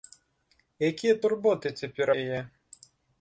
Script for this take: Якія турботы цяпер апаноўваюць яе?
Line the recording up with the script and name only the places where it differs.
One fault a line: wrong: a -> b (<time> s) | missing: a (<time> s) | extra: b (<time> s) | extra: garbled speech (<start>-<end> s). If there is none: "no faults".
missing: апаноўваюць (2.1 s)